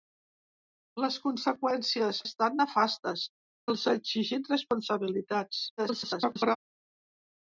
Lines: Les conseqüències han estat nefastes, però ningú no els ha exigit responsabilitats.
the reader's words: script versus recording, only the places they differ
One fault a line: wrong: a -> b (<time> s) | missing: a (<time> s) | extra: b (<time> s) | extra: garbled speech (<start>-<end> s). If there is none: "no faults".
missing: han (2.2 s)
missing: però ningú no (3.3 s)
extra: garbled speech (5.8-6.6 s)